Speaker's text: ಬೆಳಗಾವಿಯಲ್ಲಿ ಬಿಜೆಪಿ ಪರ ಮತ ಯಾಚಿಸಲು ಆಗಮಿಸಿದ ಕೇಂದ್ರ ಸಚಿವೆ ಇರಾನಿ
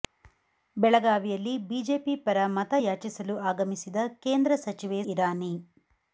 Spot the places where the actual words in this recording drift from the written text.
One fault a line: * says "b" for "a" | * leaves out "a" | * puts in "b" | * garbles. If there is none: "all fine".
all fine